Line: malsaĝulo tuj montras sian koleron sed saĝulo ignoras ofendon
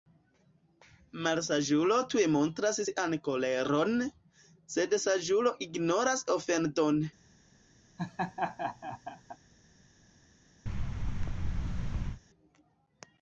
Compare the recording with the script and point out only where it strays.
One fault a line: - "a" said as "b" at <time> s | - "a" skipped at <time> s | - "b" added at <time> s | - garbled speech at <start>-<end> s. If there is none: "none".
none